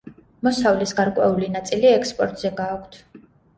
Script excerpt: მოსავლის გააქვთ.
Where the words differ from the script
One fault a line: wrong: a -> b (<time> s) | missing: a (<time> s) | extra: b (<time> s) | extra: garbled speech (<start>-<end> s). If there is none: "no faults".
extra: გარკვეული ნაწილი ექსპორტზე (1.0 s)